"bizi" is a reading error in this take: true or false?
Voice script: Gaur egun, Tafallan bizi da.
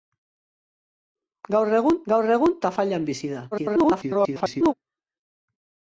false